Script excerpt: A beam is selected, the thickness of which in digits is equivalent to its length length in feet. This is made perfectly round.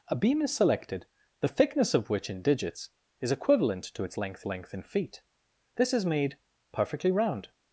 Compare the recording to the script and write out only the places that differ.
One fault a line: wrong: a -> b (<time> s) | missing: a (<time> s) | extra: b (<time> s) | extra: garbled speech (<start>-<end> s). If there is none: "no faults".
no faults